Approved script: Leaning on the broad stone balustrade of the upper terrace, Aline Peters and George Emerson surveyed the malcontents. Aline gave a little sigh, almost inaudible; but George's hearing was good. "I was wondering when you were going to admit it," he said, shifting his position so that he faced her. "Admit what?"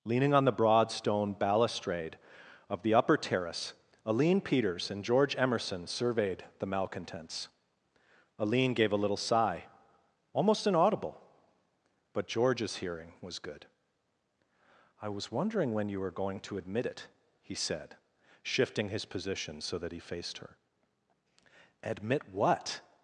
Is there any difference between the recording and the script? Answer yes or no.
no